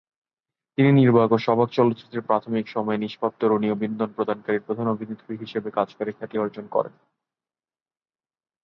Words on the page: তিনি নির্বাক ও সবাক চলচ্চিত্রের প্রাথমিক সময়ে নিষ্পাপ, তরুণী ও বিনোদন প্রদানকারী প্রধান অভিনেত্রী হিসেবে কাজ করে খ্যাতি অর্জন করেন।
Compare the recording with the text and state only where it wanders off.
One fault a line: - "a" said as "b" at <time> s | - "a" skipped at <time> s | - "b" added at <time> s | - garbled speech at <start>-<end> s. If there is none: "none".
none